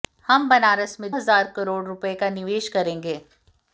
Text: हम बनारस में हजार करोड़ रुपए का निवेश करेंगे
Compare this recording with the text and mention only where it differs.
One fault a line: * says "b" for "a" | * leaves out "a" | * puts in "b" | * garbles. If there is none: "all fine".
all fine